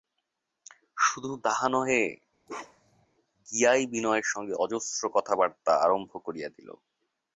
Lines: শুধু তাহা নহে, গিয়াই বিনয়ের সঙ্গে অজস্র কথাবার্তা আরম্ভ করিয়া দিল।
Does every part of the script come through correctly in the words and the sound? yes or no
no